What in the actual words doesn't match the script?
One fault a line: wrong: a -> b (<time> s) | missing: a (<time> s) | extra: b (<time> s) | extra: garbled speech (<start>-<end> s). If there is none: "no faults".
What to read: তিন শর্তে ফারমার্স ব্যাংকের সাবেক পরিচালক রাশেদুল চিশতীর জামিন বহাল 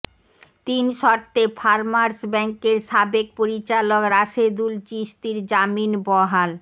no faults